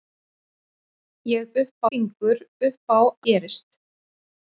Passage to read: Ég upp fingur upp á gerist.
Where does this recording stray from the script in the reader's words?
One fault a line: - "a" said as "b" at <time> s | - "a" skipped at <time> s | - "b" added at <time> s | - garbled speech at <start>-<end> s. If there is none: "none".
none